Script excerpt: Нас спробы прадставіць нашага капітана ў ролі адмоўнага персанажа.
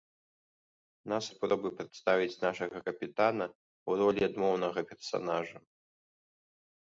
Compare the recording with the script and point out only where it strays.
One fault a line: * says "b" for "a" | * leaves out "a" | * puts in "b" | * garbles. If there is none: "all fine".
all fine